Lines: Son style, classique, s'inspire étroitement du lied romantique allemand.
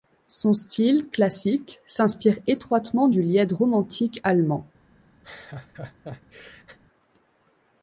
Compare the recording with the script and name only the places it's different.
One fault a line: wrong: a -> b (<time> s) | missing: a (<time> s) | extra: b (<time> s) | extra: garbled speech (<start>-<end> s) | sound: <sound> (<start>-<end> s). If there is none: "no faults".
sound: laugh (5.2-6.8 s)